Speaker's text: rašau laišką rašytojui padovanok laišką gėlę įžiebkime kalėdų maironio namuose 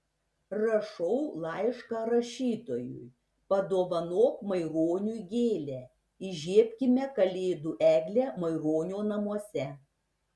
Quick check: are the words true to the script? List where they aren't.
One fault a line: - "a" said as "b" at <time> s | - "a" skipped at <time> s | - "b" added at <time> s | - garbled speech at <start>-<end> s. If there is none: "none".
- "laišką" said as "maironiui" at 4.5 s
- "eglę" added at 7.9 s